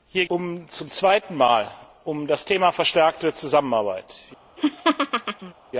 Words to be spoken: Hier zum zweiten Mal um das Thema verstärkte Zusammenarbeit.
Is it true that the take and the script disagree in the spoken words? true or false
false